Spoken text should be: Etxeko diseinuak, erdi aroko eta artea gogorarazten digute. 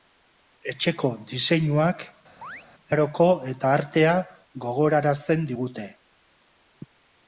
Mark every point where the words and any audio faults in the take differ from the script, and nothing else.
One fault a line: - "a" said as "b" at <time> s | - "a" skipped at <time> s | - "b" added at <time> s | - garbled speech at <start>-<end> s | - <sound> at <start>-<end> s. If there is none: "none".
- "erdi" skipped at 2.1 s
- chirp at 2.4-2.6 s